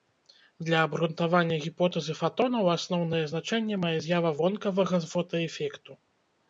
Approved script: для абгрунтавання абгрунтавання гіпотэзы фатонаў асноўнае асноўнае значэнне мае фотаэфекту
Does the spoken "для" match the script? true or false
true